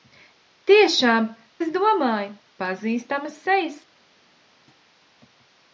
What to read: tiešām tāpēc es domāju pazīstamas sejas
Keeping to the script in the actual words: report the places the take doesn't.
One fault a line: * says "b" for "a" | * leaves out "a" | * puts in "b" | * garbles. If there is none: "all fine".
* leaves out "tāpēc"